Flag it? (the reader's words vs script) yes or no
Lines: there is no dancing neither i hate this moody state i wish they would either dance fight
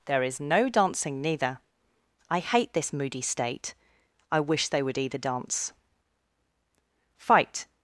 no